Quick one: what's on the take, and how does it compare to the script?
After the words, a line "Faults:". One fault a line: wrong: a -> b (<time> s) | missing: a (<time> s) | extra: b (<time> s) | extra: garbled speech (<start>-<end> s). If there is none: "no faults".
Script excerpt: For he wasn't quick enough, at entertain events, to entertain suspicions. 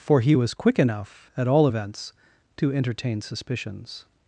For he was quick enough, at all events, to entertain suspicions.
Faults:
wrong: wasn't -> was (0.3 s)
wrong: entertain -> all (1.5 s)